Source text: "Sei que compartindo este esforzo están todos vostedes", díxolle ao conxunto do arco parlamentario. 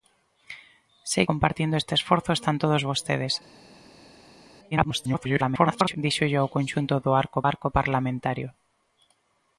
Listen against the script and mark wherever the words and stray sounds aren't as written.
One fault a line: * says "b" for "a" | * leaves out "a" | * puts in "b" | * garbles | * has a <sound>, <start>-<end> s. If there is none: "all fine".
* leaves out "que"
* garbles
* puts in "arco"